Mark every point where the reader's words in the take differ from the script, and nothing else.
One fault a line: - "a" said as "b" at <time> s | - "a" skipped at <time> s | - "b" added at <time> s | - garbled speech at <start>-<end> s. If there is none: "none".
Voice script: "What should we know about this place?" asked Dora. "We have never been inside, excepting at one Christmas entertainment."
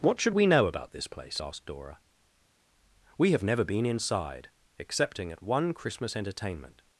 none